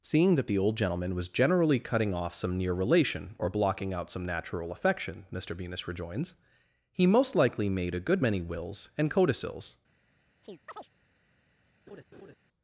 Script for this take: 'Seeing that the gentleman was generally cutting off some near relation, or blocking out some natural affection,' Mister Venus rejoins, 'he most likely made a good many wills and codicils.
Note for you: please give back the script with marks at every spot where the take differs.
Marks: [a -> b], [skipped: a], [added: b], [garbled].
'Seeing that the [added: old] gentleman was generally cutting off some near relation, or blocking out some natural affection,' Mister Venus rejoins, 'he most likely made a good many wills and codicils.